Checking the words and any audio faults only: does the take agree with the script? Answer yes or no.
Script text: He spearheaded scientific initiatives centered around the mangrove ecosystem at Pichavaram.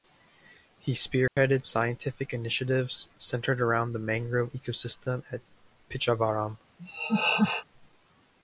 no